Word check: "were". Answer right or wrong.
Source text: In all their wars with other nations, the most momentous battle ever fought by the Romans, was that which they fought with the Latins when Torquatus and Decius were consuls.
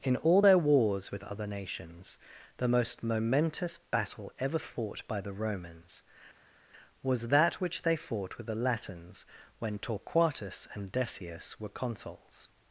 right